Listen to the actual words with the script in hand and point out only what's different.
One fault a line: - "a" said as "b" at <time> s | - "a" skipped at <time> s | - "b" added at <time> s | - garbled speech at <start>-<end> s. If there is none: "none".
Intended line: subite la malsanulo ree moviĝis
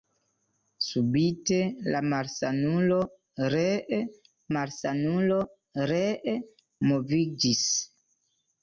- "malsanulo ree" added at 4.6 s